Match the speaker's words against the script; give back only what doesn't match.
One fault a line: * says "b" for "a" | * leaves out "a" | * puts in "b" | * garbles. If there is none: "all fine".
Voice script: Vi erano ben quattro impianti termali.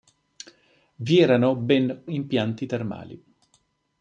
* leaves out "quattro"